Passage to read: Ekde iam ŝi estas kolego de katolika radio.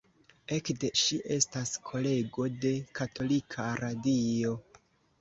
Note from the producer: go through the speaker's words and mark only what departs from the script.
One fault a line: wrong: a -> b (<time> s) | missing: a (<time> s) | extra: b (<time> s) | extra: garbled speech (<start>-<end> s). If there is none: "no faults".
missing: iam (0.9 s)